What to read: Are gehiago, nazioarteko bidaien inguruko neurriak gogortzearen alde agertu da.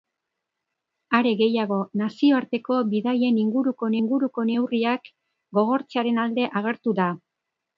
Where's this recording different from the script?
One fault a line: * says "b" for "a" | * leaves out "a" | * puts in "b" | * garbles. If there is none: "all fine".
* puts in "inguruko"